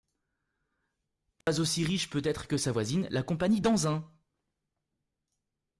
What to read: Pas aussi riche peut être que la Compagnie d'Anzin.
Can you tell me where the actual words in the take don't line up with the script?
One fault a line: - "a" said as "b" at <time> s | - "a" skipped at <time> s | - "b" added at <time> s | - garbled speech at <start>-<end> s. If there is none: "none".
- "sa voisine" added at 2.6 s